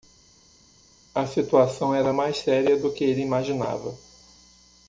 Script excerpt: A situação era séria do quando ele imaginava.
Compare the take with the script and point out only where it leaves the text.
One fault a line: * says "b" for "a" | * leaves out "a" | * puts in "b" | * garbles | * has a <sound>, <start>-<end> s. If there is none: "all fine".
* puts in "mais"
* says "que" for "quando"